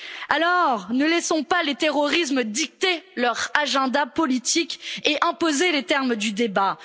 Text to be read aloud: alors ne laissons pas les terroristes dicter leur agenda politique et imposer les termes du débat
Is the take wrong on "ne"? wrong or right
right